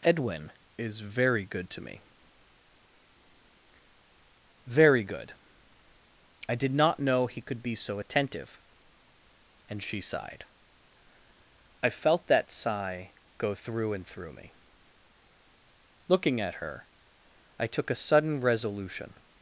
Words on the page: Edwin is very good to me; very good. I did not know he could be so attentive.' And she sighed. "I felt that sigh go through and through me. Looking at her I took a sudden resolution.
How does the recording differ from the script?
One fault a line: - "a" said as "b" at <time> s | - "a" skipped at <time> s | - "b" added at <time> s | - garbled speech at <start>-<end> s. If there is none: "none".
none